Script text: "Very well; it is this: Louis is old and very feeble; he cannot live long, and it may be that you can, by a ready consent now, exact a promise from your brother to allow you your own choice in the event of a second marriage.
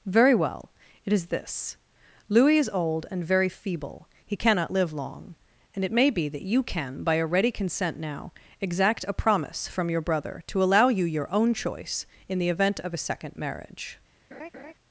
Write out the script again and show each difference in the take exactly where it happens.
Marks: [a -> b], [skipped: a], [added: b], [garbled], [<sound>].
"Very well; it is this: Louis is old and very feeble; he cannot live long, and it may be that you can, by a ready consent now, exact a promise from your brother to allow you your own choice in the event of a second marriage. [laugh]